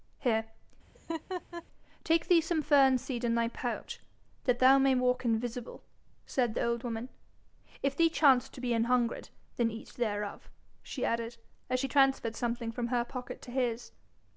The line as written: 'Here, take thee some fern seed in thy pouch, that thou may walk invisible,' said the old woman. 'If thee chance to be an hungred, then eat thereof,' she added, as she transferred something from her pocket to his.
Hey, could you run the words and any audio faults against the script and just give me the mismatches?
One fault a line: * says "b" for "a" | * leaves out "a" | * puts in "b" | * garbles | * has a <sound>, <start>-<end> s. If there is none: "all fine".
* has a laugh, 0.9-1.6 s